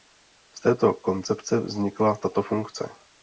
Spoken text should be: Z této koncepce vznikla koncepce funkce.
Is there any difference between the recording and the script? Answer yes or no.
yes